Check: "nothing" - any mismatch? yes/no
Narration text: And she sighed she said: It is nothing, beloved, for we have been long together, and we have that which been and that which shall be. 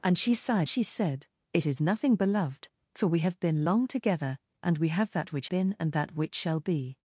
no